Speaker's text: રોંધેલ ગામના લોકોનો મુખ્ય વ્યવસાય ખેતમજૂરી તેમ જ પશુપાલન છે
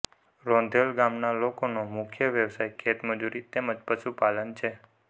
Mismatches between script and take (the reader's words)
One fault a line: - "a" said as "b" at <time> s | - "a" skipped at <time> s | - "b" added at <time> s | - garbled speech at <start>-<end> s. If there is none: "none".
none